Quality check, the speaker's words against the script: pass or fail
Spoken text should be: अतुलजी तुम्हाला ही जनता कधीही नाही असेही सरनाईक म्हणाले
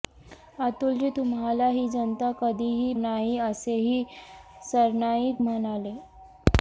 pass